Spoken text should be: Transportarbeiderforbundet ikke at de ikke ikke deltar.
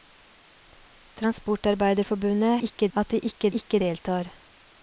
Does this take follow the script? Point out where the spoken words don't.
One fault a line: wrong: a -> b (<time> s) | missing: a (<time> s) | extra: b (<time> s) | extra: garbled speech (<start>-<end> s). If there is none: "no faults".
no faults